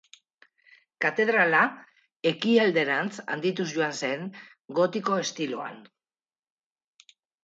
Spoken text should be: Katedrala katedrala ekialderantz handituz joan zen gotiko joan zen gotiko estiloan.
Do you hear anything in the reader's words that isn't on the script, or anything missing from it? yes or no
yes